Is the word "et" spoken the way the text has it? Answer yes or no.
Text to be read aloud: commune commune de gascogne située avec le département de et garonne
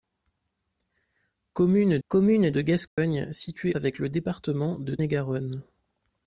yes